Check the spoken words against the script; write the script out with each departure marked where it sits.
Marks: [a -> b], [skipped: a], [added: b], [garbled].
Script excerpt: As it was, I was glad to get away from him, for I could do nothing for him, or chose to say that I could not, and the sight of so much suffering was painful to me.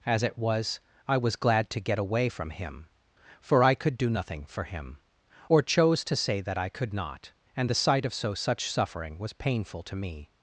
As it was, I was glad to get away from him, for I could do nothing for him, or chose to say that I could not, and the sight of so [much -> such] suffering was painful to me.